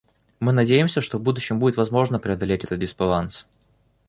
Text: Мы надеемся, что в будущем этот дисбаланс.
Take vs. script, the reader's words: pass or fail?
fail